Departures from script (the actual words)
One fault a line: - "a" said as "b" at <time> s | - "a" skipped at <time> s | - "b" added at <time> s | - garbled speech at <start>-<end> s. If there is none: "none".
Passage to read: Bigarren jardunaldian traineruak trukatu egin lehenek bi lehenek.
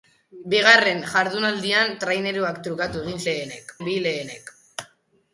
none